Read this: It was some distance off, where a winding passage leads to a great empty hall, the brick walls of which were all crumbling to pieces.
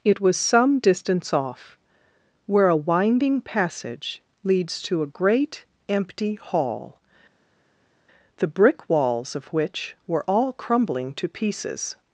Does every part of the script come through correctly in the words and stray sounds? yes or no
yes